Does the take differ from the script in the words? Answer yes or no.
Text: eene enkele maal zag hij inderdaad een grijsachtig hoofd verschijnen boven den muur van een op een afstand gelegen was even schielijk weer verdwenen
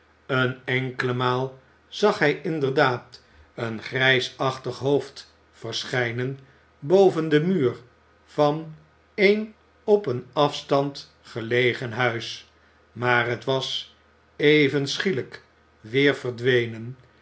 yes